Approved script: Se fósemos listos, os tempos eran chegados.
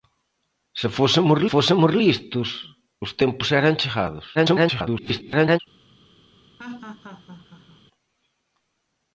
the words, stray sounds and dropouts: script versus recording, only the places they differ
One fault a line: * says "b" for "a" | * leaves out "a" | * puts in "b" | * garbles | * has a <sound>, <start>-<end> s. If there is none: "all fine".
* puts in "fósemos"
* garbles
* has a laugh, 6.6-7.8 s